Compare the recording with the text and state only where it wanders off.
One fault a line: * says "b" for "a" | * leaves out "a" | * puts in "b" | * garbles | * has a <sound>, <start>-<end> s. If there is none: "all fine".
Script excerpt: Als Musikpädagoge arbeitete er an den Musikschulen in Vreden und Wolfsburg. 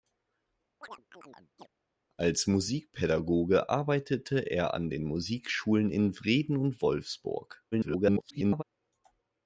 * has a chirp, 0.8-1.7 s
* garbles